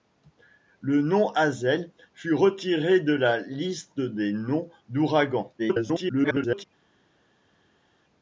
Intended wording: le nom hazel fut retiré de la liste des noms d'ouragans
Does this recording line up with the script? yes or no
no